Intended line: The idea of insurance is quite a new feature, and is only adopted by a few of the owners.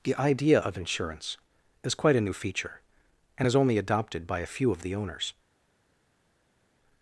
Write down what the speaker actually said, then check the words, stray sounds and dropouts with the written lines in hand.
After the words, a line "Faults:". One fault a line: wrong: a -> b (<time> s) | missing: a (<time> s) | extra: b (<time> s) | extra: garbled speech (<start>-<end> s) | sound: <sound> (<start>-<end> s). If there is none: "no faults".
The idea of insurance is quite a new feature, and is only adopted by a few of the owners.
Faults:
no faults